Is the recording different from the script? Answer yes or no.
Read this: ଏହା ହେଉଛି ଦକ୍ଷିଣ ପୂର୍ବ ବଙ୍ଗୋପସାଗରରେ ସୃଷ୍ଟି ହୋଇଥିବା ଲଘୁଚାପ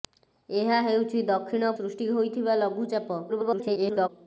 yes